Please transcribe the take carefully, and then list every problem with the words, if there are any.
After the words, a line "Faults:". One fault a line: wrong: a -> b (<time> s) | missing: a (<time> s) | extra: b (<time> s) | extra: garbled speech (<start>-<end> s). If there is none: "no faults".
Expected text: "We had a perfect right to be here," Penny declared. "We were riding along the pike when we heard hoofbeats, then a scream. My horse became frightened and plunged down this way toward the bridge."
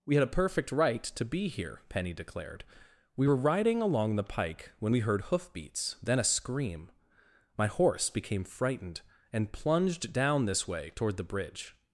"We had a perfect right to be here," Penny declared. "We were riding along the pike when we heard hoofbeats, then a scream. My horse became frightened and plunged down this way toward the bridge."
Faults:
no faults